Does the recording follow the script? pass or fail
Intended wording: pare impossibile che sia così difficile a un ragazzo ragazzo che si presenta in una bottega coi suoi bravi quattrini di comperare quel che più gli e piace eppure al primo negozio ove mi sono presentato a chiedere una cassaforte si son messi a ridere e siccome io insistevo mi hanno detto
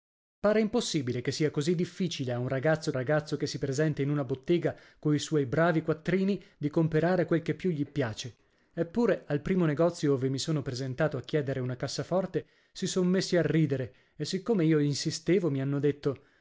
pass